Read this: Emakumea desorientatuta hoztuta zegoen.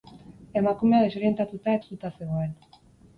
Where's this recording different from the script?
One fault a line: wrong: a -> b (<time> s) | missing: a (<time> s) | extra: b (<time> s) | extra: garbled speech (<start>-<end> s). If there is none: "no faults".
no faults